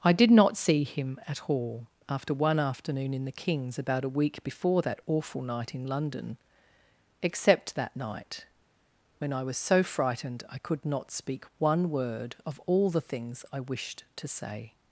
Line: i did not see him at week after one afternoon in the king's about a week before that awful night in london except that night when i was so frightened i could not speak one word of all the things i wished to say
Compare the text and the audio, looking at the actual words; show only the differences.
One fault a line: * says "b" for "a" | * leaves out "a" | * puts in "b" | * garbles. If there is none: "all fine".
* says "all" for "week"